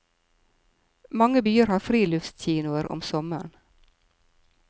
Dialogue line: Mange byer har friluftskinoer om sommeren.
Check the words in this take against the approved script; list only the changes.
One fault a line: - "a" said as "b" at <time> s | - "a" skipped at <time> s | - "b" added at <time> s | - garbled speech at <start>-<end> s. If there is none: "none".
none